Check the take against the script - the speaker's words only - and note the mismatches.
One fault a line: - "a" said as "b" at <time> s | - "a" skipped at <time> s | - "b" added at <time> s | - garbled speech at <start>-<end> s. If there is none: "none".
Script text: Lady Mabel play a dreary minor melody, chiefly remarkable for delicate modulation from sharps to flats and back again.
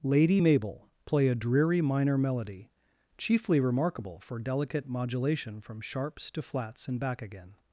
none